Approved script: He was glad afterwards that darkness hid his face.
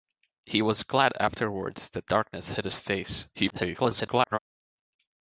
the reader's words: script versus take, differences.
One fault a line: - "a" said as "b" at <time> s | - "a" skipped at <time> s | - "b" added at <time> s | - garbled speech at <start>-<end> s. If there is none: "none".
- garbled speech at 3.3-4.4 s